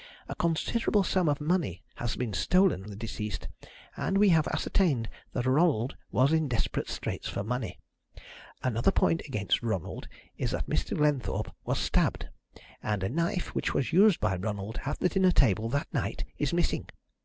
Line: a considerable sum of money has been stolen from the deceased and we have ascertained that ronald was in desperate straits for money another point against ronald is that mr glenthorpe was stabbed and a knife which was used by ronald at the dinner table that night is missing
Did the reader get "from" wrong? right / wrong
wrong